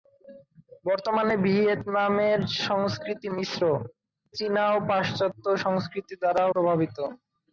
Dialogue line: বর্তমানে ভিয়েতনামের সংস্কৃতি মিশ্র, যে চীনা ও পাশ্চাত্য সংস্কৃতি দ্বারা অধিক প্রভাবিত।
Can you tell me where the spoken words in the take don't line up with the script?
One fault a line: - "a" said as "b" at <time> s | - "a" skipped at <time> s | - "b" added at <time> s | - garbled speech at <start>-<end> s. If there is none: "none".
- "যে" skipped at 3.6 s
- "অধিক" skipped at 6.4 s